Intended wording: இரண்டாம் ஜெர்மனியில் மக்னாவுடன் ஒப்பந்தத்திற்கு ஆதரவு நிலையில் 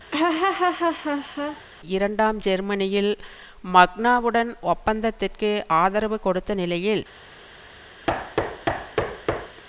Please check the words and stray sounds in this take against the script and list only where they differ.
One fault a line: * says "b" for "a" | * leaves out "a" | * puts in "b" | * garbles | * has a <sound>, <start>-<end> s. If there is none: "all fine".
* has a laugh, 0.1-1.6 s
* puts in "கொடுத்த"
* has a thud, 8.1-9.6 s